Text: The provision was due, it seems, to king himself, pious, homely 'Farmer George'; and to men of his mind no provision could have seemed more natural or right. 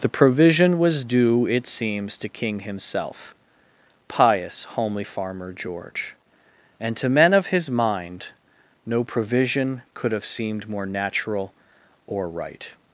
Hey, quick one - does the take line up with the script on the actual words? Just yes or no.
yes